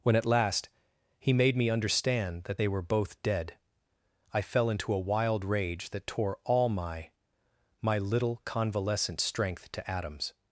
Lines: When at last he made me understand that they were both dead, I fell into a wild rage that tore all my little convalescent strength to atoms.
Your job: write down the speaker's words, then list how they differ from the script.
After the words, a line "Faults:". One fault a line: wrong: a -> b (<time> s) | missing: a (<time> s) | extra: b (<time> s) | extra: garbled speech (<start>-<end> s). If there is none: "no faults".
When at last he made me understand that they were both dead, I fell into a wild rage that tore all my my little convalescent strength to atoms.
Faults:
extra: my (7.8 s)